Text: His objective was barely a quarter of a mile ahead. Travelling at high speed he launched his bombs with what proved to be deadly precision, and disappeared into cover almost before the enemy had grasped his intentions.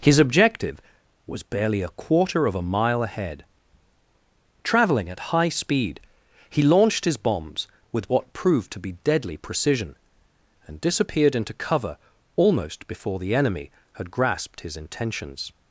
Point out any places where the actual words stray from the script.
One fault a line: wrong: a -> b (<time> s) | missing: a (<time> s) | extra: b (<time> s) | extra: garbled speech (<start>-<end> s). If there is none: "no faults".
no faults